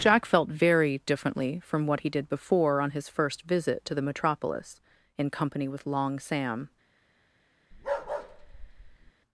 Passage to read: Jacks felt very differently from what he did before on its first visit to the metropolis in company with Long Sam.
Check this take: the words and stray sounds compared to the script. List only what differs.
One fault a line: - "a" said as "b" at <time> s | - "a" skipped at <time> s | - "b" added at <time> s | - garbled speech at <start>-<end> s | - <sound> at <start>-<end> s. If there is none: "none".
- "Jacks" said as "Jack" at 0.0 s
- "its" said as "his" at 2.9 s
- bark at 7.7-9.1 s